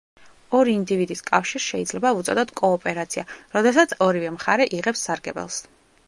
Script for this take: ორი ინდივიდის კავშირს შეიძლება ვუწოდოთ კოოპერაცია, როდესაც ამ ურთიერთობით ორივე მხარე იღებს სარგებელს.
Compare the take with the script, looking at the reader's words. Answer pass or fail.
fail